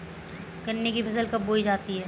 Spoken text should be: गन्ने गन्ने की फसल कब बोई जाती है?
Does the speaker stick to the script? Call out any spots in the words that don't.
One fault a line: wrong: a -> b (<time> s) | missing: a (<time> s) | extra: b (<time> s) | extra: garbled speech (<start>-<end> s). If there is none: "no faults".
missing: गन्ने (0.9 s)